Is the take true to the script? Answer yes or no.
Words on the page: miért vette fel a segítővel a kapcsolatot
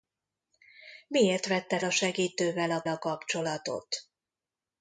no